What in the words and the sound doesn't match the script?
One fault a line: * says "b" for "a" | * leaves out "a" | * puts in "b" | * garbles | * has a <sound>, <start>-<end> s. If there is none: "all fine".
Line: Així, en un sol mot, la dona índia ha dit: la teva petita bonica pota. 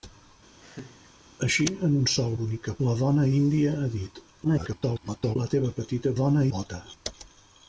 * has a laugh, 0.6-1.1 s
* says "bonica" for "mot"
* garbles
* says "dona" for "bonica"